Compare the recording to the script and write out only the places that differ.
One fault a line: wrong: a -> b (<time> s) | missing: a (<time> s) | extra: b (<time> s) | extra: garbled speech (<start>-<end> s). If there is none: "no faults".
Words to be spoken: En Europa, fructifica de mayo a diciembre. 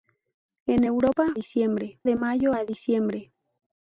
wrong: fructifica -> diciembre (1.3 s)